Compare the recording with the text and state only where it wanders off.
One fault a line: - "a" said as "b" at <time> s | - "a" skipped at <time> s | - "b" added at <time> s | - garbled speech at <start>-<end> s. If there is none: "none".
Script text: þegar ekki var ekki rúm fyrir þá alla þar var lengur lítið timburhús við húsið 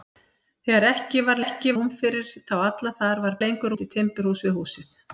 none